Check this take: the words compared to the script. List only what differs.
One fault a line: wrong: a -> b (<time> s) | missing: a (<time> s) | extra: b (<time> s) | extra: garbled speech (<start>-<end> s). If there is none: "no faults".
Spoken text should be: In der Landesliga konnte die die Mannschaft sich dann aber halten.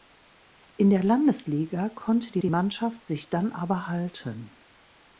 no faults